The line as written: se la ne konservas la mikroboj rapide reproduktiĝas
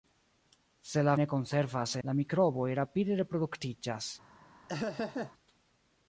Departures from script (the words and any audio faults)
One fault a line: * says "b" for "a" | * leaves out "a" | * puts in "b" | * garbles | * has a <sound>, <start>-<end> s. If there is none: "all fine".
* has a laugh, 4.7-5.3 s